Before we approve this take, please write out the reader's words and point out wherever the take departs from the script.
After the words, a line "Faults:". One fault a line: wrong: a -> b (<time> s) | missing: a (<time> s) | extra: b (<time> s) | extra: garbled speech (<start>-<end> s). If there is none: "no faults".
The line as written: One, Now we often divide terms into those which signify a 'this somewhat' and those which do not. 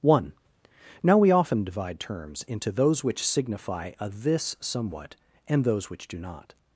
One, Now we often divide terms into those which signify a 'this somewhat' and those which do not.
Faults:
no faults